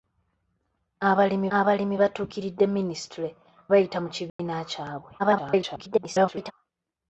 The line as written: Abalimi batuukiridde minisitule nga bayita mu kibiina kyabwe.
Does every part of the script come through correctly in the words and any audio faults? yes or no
no